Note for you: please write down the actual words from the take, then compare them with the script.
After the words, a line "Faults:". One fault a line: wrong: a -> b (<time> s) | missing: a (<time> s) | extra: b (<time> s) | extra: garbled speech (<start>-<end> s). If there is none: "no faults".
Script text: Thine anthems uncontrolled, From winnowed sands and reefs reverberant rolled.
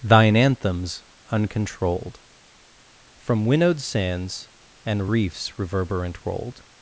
Thine anthems uncontrolled, From winnowed sands and reefs reverberant rolled.
Faults:
no faults